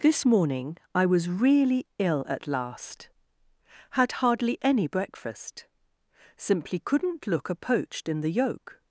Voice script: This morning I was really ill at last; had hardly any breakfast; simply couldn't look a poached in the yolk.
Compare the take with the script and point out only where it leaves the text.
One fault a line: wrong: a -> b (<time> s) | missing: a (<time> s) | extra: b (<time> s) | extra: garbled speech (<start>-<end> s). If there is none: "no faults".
no faults